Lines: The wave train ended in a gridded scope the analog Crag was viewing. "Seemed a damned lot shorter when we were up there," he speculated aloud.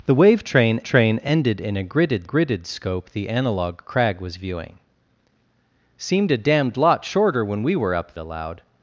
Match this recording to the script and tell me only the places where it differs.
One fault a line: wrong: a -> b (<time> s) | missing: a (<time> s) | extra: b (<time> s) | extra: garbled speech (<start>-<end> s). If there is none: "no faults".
extra: train (0.8 s)
extra: gridded (2.2 s)
missing: there he speculated (8.1 s)